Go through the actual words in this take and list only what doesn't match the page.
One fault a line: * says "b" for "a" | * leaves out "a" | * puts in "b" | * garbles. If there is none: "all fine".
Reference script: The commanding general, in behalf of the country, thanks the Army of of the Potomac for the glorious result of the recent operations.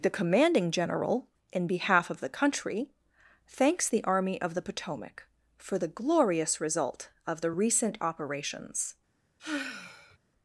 * leaves out "of"